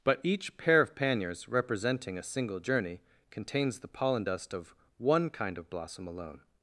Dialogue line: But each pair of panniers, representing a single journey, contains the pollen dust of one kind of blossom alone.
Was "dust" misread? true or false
false